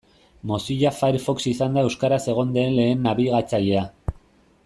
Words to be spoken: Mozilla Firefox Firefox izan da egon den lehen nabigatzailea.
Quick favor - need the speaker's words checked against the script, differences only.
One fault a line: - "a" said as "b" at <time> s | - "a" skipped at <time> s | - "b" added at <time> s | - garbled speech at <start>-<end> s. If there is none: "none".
- "Firefox" skipped at 1.4 s
- "euskaraz" added at 1.9 s